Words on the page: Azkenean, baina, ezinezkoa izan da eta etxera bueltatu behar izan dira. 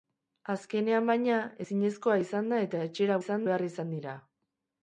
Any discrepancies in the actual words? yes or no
yes